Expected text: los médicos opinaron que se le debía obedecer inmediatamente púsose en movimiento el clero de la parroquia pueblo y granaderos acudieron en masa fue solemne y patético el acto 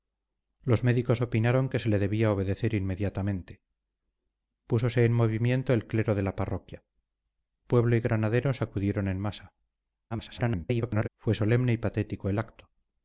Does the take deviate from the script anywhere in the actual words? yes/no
yes